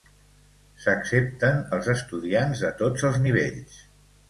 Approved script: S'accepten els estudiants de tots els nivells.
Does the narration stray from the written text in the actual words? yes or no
no